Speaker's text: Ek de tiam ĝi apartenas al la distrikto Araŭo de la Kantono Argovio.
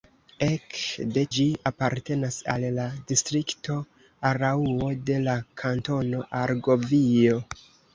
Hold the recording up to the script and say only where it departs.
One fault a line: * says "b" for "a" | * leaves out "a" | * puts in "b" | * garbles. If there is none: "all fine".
* leaves out "tiam"